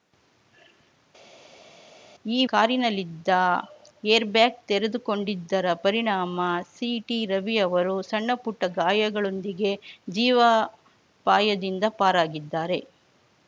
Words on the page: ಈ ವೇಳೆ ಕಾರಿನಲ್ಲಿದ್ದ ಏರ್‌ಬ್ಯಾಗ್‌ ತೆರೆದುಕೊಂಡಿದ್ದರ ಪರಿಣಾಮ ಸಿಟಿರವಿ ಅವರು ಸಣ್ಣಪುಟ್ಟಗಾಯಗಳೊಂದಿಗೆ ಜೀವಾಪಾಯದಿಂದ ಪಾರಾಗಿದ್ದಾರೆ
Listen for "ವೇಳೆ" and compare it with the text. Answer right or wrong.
wrong